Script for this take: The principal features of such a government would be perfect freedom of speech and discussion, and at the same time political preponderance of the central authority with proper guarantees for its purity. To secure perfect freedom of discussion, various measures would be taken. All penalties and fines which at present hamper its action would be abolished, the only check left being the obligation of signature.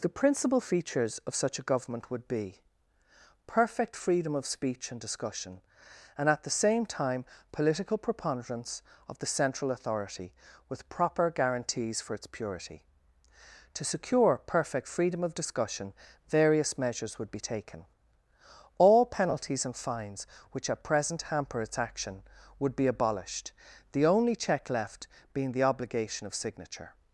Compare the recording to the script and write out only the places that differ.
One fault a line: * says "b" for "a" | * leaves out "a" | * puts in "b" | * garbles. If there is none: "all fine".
all fine